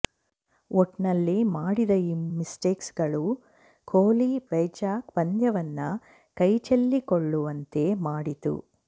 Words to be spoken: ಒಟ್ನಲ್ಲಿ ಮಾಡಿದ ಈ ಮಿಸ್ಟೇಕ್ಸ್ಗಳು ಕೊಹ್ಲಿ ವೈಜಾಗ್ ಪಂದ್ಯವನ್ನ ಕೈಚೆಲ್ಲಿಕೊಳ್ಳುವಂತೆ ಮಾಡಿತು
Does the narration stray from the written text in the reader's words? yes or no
no